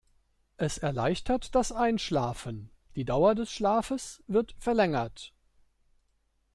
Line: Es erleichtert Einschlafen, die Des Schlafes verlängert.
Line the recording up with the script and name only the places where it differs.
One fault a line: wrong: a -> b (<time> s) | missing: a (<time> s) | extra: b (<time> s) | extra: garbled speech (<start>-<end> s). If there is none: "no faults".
extra: das (1.5 s)
extra: Dauer (3.0 s)
extra: wird (4.3 s)